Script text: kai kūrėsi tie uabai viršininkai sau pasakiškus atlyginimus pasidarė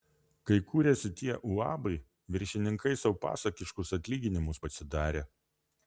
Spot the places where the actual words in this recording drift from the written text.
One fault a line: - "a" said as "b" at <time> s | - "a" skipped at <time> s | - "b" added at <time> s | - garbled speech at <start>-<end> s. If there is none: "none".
none